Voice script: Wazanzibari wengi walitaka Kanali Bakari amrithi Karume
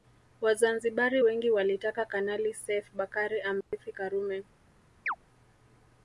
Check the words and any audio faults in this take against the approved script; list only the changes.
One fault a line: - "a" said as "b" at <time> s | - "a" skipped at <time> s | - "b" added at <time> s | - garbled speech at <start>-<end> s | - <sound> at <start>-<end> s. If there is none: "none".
- "Seif" added at 2.5 s
- dropout at 3.6-3.7 s
- chirp at 5.1-5.2 s